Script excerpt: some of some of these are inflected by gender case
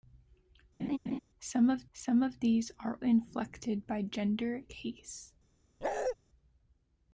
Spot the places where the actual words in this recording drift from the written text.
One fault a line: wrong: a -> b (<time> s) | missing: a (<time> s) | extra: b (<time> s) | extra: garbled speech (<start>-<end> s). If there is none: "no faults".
no faults